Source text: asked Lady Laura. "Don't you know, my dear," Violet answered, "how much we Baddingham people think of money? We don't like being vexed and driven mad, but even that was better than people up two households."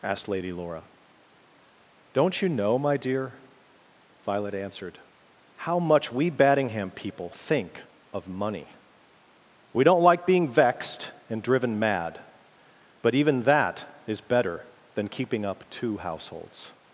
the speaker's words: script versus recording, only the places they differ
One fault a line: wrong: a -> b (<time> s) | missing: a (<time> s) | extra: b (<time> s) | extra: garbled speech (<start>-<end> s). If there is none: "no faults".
wrong: was -> is (14.1 s)
wrong: people -> keeping (15.1 s)